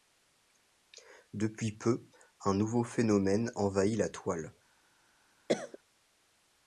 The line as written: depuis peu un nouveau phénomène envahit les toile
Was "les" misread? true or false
true